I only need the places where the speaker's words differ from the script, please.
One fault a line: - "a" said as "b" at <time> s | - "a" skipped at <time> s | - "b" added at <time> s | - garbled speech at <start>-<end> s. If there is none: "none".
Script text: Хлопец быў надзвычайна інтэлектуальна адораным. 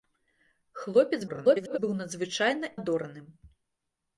- garbled speech at 1.3-1.8 s
- "інтэлектуальна" skipped at 2.7 s